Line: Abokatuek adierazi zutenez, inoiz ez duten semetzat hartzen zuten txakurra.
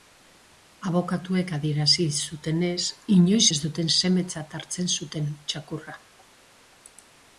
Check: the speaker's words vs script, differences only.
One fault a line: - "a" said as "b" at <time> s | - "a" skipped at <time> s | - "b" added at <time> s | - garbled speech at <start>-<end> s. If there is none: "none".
none